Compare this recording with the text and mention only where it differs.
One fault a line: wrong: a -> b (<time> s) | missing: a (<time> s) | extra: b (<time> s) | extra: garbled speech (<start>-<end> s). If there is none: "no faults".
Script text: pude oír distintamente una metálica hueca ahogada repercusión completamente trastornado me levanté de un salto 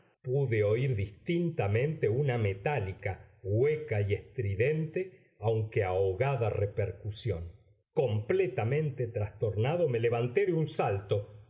extra: y estridente aunque (4.0 s)